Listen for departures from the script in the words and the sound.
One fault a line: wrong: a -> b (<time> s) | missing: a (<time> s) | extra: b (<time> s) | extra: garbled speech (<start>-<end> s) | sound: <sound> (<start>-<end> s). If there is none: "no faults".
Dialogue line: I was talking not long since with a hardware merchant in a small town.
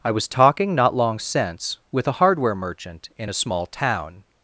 no faults